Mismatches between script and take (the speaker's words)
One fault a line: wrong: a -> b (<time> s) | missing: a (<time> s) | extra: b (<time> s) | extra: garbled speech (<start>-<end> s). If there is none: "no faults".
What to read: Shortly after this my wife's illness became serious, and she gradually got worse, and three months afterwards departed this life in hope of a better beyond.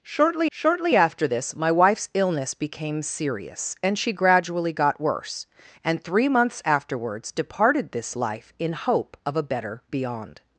extra: shortly (0.5 s)